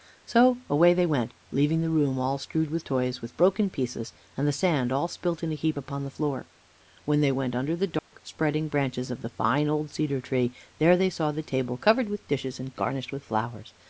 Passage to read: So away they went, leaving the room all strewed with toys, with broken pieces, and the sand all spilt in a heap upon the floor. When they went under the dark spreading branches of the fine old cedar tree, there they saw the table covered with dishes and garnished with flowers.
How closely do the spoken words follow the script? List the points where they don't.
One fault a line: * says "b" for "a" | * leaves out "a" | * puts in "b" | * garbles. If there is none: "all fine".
all fine